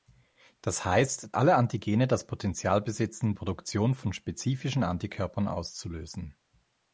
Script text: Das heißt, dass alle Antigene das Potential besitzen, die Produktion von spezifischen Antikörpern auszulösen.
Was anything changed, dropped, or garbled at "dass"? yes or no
yes